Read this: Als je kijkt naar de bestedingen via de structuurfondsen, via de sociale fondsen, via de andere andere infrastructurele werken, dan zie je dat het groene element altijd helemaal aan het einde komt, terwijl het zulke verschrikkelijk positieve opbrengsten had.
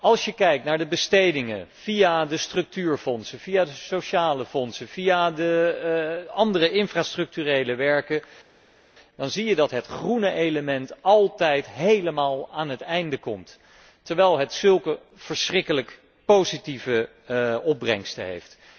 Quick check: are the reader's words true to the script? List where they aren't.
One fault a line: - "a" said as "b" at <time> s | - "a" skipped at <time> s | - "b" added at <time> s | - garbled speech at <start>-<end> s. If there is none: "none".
- "andere" skipped at 6.7 s
- "had" said as "heeft" at 18.3 s